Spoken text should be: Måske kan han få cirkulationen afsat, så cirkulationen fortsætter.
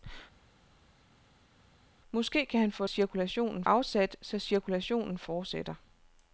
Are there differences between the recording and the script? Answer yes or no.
no